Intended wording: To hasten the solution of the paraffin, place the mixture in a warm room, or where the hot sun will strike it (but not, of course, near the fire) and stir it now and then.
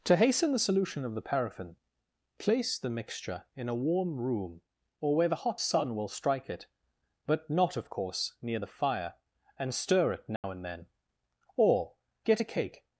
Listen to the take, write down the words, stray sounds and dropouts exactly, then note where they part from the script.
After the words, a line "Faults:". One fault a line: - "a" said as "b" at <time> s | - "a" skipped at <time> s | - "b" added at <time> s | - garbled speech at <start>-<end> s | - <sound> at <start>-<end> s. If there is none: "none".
To hasten the solution of the paraffin, place the mixture in a warm room, or where the hot sun will strike it (but not, of course, near the fire) and stir it now and then. Or, get a cake
Faults:
- dropout at 10.4-10.4 s
- "Or get a cake" added at 11.6 s